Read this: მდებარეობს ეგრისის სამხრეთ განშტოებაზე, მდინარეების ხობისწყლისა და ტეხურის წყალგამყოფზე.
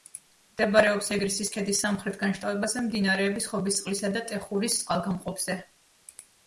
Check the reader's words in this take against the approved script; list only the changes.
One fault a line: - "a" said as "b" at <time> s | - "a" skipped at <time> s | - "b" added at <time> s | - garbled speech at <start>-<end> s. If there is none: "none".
- "ქედის" added at 1.6 s